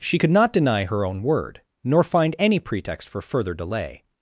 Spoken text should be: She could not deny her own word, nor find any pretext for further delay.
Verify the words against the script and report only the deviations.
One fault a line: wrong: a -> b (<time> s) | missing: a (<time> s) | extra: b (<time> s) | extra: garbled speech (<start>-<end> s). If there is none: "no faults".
no faults